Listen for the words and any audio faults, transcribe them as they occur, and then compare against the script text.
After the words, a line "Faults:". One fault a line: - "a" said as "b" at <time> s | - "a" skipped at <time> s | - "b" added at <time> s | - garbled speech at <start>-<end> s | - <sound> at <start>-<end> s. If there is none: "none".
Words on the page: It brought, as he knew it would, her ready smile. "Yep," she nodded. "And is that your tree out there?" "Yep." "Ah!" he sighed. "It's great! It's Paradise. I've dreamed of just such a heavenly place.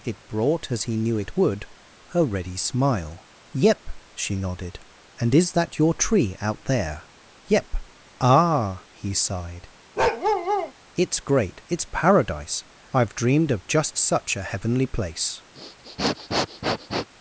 It brought, as he knew it would, her ready smile. "Yep," she nodded. "And is that your tree out there?" "Yep." "Ah!" he sighed. "It's great! It's Paradise. I've dreamed of just such a heavenly place.
Faults:
- bark at 10.0-10.7 s
- sniff at 15.5-17.1 s